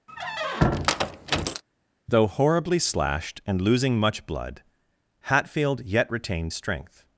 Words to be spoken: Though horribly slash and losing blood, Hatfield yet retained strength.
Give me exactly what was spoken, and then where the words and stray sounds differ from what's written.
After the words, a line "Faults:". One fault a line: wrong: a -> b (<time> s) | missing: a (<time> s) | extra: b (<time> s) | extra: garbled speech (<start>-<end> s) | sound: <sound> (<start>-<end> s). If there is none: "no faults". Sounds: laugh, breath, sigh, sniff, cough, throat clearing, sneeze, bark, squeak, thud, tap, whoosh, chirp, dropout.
Though horribly slashed and losing much blood, Hatfield yet retained strength.
Faults:
sound: squeak (0.1-1.6 s)
wrong: slash -> slashed (2.8 s)
extra: much (4.0 s)